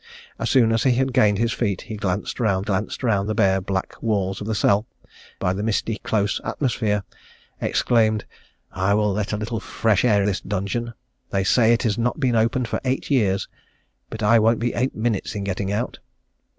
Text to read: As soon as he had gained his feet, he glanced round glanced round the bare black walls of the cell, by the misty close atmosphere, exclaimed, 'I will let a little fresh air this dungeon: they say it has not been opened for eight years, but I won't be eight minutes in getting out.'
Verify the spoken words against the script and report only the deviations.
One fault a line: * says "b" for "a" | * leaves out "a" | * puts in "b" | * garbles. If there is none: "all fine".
all fine